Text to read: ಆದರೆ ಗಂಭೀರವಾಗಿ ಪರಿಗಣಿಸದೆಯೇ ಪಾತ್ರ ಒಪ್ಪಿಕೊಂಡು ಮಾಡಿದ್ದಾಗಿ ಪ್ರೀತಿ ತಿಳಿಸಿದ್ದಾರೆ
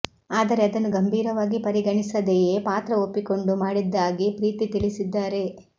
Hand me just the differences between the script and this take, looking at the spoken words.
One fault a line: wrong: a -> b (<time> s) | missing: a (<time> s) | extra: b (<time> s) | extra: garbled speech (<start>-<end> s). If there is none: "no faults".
extra: ಅದನ್ನು (0.7 s)